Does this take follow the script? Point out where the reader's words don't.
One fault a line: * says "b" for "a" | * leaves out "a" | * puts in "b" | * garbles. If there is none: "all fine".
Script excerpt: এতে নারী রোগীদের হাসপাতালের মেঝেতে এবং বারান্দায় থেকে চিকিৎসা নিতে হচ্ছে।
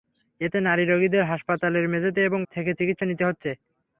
* leaves out "বারান্দায়"